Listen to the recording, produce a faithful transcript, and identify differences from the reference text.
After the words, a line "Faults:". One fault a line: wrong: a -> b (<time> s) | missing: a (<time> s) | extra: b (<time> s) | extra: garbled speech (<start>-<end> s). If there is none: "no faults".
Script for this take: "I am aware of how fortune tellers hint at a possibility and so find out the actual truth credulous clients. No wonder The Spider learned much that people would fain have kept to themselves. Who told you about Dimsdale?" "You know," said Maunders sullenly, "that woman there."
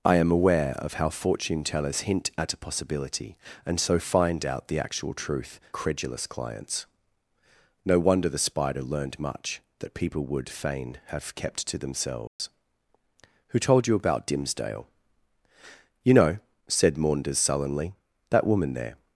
"I am aware of how fortune tellers hint at a possibility and so find out the actual truth credulous clients. No wonder The Spider learned much that people would fain have kept to themselves. Who told you about Dimsdale?" "You know," said Maunders sullenly, "that woman there."
Faults:
no faults